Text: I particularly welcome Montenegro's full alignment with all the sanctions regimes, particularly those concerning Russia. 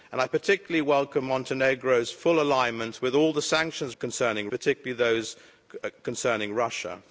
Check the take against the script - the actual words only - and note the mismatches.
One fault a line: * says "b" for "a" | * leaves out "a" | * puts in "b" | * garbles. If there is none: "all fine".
* says "concerning" for "regimes"